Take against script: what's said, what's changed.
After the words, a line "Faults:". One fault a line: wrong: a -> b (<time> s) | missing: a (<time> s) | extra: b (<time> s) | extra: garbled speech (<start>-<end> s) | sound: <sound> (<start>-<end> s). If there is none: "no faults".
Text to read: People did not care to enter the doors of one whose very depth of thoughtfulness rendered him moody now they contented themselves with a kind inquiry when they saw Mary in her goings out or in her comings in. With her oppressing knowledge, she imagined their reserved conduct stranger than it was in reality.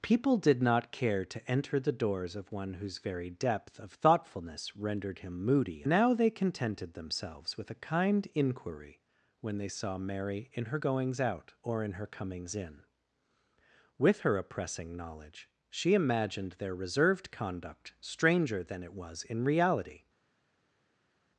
People did not care to enter the doors of one whose very depth of thoughtfulness rendered him moody now they contented themselves with a kind inquiry when they saw Mary in her goings out or in her comings in. With her oppressing knowledge, she imagined their reserved conduct stranger than it was in reality.
Faults:
no faults